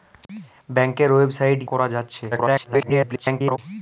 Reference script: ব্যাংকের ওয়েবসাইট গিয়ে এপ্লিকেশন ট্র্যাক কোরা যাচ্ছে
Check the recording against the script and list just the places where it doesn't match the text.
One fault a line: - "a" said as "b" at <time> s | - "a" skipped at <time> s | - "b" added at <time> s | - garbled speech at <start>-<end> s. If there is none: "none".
- "গিয়ে এপ্লিকেশন ট্র্যাক" skipped at 1.6 s
- garbled speech at 2.3-3.6 s